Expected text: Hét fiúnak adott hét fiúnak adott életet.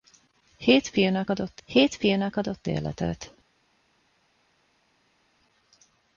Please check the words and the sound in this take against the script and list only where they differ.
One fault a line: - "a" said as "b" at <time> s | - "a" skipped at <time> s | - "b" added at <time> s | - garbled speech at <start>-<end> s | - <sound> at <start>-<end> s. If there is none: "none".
none